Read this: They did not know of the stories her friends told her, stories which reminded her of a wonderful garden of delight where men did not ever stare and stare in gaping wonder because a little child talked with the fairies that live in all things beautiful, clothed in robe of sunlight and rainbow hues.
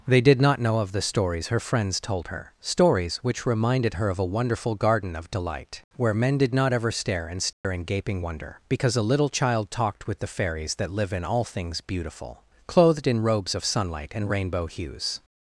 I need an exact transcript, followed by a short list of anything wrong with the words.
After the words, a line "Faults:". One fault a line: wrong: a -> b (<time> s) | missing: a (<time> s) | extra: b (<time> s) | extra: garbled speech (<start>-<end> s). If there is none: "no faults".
They did not know of the stories her friends told her, stories which reminded her of a wonderful garden of delight where men did not ever stare and stare in gaping wonder because a little child talked with the fairies that live in all things beautiful, clothed in robes of sunlight and rainbow hues.
Faults:
wrong: robe -> robes (13.2 s)